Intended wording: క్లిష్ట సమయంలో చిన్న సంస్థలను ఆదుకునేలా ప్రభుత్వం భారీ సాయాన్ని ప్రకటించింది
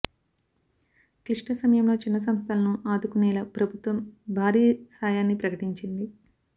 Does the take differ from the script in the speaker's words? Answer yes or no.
no